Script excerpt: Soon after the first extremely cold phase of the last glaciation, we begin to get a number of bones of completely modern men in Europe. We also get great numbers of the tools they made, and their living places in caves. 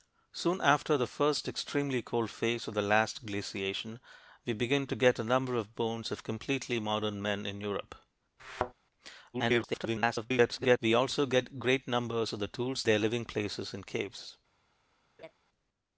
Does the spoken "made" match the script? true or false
false